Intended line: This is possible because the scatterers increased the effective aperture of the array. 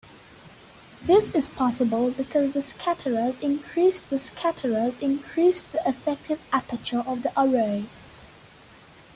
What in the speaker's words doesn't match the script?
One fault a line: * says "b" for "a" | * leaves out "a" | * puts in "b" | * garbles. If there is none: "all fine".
* puts in "scatterers increased the"